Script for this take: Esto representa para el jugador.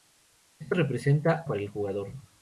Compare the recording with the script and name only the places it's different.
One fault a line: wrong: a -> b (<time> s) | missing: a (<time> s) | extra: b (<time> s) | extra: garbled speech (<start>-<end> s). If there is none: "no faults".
no faults